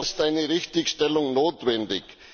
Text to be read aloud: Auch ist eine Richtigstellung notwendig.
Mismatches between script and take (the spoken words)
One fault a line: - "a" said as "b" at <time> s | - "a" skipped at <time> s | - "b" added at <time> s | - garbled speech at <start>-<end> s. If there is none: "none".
none